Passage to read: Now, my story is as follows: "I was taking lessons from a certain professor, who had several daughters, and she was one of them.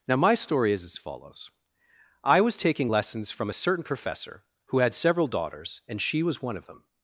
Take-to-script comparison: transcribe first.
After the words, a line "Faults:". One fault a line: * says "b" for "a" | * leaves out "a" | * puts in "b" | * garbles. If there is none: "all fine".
Now, my story is as follows: "I was taking lessons from a certain professor, who had several daughters, and she was one of them.
Faults:
all fine